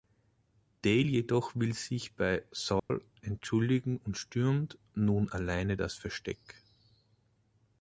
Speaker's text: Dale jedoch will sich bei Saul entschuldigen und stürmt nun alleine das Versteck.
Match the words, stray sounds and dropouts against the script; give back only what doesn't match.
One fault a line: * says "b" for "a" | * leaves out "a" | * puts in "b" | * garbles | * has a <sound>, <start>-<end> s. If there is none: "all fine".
* has a dropout, 2.8-2.9 s